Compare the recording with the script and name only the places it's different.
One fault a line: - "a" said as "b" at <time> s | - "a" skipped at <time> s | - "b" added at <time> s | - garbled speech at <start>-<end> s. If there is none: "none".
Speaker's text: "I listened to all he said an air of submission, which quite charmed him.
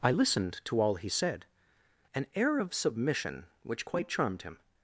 none